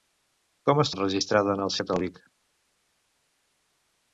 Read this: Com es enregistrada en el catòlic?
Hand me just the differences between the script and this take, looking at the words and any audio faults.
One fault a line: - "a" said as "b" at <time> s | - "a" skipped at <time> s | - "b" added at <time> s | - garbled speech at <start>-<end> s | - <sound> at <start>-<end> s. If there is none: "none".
none